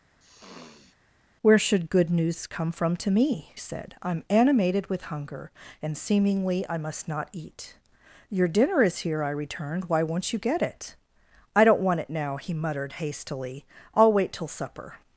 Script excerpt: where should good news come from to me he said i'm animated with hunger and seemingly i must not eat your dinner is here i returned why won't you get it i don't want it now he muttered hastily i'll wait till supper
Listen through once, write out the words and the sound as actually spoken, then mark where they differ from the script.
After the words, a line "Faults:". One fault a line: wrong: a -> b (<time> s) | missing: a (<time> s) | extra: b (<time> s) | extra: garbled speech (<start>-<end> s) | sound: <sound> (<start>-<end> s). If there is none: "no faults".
where should good news come from to me said i'm animated with hunger and seemingly i must not eat your dinner is here i returned why won't you get it i don't want it now he muttered hastily i'll wait till supper
Faults:
sound: sniff (0.2-1.0 s)
missing: he (3.6 s)